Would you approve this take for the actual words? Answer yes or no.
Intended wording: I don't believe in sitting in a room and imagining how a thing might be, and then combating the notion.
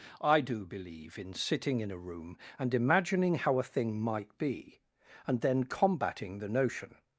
no